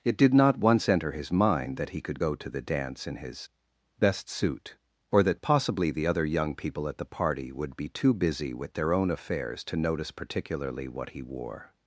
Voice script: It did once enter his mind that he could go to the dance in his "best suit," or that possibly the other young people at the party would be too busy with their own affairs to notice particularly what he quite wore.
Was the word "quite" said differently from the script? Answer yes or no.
yes